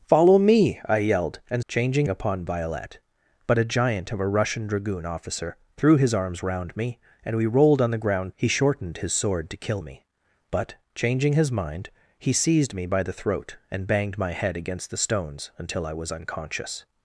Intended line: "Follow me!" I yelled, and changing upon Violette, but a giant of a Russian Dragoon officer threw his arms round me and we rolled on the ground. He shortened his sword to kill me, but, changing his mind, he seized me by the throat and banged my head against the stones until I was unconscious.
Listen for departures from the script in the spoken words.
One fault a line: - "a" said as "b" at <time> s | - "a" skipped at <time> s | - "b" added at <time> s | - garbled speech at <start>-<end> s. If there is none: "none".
none